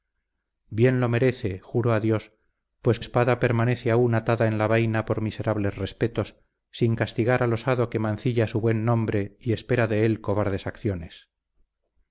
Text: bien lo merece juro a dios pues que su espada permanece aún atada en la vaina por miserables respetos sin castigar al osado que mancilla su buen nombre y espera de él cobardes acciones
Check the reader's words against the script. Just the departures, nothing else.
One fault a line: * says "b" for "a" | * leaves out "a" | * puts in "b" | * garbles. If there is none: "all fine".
* leaves out "que su"